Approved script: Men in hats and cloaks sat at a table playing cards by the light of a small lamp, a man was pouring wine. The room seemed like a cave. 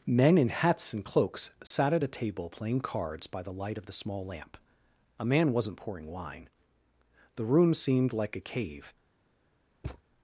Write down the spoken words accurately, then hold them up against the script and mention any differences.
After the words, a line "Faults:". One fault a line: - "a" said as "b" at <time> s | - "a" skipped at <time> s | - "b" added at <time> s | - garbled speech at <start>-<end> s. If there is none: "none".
Men in hats and cloaks sat at a table playing cards by the light of the small lamp, a man wasn't pouring wine. The room seemed like a cave.
Faults:
- "a" said as "the" at 3.9 s
- "was" said as "wasn't" at 5.5 s